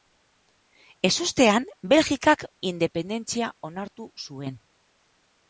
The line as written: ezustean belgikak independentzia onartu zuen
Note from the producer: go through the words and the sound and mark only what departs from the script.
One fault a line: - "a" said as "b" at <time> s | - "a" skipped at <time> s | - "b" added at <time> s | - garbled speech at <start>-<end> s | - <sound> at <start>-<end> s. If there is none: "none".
none